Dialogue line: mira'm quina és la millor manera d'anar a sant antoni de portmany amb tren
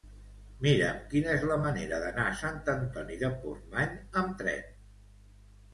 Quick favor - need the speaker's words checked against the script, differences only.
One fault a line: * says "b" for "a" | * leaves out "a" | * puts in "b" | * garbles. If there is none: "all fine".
all fine